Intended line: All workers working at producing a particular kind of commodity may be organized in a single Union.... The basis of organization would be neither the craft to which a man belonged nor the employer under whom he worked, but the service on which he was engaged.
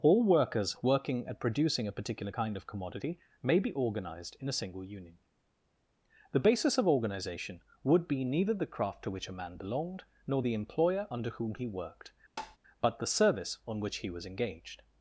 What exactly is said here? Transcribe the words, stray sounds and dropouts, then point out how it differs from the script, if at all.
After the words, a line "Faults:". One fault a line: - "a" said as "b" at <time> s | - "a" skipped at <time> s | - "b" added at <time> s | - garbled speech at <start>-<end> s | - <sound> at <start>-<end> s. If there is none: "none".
All workers working at producing a particular kind of commodity may be organized in a single Union.... The basis of organization would be neither the craft to which a man belonged nor the employer under whom he worked, but the service on which he was engaged.
Faults:
- tap at 12.4-12.6 s